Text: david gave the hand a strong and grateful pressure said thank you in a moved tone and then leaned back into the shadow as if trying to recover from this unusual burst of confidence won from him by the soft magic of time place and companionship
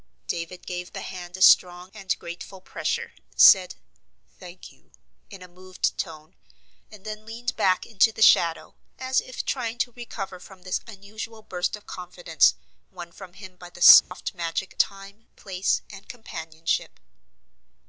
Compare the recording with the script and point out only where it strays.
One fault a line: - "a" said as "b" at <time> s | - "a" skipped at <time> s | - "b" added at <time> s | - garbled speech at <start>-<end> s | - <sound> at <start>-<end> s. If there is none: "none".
- dropout at 14.0-14.1 s
- "of" skipped at 14.7 s